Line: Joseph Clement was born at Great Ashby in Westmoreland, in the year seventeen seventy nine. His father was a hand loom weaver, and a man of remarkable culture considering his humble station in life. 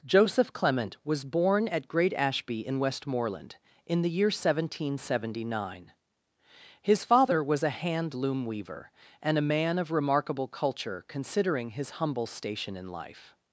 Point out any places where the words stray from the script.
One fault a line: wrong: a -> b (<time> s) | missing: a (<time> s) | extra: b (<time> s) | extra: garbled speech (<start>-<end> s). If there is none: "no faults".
no faults